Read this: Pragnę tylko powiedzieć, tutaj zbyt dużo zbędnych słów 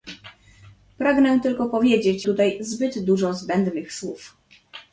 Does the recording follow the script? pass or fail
pass